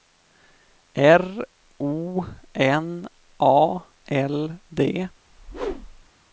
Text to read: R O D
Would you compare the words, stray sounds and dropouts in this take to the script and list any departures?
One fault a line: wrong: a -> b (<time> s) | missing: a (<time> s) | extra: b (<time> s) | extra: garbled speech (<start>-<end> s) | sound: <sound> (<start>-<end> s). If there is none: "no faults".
extra: N A L (2.5 s)
sound: whoosh (5.3-6.1 s)